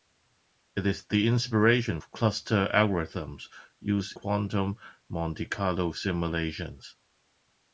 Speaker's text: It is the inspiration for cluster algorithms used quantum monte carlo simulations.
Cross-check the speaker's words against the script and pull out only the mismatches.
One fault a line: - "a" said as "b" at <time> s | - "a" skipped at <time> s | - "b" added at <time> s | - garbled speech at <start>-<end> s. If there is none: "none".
none